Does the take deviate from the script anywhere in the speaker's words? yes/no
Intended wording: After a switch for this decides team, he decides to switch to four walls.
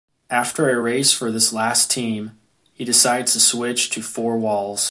yes